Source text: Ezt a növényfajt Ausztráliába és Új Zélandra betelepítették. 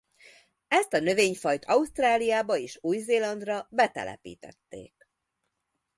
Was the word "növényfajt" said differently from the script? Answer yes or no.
no